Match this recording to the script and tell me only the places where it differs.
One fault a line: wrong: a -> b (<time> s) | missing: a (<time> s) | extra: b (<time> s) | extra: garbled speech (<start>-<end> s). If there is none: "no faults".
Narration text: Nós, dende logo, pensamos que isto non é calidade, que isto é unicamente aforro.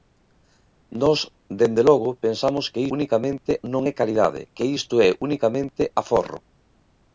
wrong: isto -> unicamente (3.0 s)